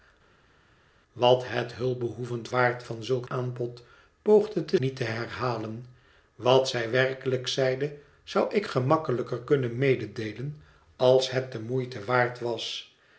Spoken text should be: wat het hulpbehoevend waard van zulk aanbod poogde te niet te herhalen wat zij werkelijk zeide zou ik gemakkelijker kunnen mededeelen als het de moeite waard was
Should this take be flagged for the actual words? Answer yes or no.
no